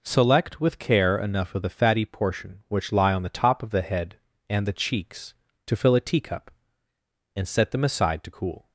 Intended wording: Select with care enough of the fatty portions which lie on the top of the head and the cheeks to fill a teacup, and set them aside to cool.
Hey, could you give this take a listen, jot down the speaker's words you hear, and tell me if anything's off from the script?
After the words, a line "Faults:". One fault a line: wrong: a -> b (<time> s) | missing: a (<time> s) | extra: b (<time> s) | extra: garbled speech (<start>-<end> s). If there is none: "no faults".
Select with care enough of the fatty portion which lie on the top of the head and the cheeks to fill a teacup, and set them aside to cool.
Faults:
wrong: portions -> portion (2.0 s)